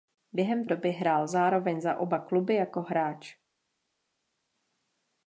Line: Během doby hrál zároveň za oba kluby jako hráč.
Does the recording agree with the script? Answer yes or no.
yes